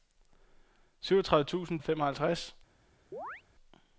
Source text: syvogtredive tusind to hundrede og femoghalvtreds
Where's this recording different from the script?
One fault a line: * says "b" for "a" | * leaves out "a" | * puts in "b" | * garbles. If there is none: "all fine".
* leaves out "to hundrede"